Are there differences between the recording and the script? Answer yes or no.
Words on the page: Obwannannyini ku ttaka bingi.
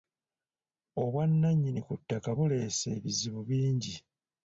yes